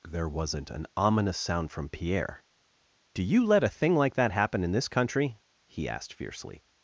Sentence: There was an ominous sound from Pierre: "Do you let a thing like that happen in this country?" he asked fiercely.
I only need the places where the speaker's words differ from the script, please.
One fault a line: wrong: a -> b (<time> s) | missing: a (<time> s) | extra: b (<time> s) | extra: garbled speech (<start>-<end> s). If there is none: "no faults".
wrong: was -> wasn't (0.3 s)